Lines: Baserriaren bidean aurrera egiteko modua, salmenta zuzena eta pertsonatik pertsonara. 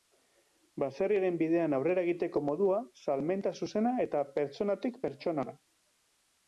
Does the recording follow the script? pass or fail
pass